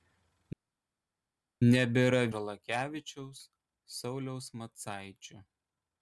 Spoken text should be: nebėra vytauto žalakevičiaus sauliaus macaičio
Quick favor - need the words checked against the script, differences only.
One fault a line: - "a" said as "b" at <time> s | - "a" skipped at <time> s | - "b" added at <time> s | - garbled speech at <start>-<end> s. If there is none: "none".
- "vytauto" skipped at 2.2 s